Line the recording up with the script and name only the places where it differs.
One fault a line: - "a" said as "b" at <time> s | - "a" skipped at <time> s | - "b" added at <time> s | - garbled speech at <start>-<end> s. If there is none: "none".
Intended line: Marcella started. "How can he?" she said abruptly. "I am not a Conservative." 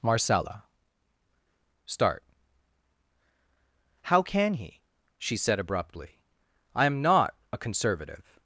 - "started" said as "start" at 1.9 s